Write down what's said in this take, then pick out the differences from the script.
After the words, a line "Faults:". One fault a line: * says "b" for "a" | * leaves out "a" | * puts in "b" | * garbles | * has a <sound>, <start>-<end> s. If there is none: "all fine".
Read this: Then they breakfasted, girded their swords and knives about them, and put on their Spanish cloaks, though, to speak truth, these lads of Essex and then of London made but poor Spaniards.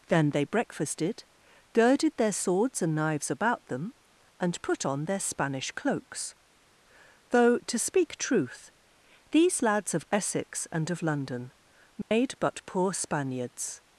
Then they breakfasted, girded their swords and knives about them, and put on their Spanish cloaks, though, to speak truth, these lads of Essex and of London made but poor Spaniards.
Faults:
* leaves out "then"
* has a dropout, 12.0-12.1 s